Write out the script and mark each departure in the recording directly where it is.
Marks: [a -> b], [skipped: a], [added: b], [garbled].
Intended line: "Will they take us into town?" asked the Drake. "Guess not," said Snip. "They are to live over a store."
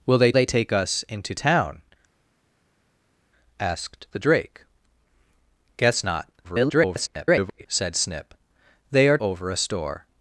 "Will they [added: they] take us into town?" asked the Drake. "Guess not," [garbled] said Snip. "They are [skipped: to live] over a store."